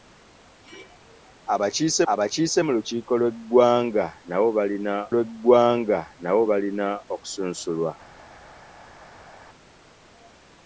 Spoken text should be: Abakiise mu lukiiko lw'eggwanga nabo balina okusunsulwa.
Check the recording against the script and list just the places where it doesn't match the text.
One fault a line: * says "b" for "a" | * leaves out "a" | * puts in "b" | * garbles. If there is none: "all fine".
* puts in "abakiise"
* puts in "lw'eggwanga nabo balina"